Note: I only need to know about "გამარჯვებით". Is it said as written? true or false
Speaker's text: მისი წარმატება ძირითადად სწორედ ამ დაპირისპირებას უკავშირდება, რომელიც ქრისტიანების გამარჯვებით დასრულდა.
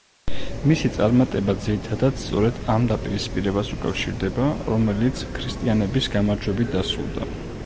true